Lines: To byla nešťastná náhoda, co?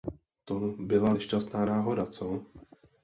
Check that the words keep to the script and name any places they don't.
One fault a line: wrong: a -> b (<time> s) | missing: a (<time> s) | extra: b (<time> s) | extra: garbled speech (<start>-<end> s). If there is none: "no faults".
no faults